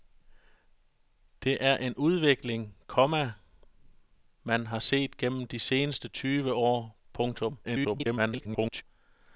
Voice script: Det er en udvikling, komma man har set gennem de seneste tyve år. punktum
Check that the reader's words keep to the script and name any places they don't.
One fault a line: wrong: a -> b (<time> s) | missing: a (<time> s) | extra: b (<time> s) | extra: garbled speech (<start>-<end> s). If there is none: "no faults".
extra: garbled speech (7.6-8.8 s)